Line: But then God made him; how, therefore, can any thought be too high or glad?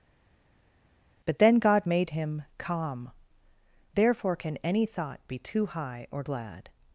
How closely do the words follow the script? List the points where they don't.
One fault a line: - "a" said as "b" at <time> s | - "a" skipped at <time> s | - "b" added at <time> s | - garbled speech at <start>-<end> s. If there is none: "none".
- "how" said as "calm" at 2.6 s